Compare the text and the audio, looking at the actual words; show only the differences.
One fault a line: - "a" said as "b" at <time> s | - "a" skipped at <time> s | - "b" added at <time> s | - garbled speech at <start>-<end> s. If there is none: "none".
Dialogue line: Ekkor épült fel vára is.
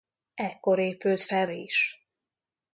- "vára" skipped at 1.5 s